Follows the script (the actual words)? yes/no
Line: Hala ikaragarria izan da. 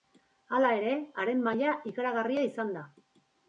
no